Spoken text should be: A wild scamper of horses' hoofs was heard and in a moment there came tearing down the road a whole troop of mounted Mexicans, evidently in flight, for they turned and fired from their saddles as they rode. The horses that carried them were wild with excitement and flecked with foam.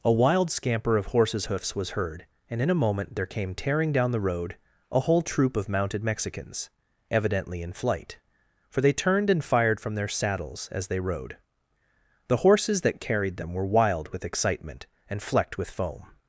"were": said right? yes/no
yes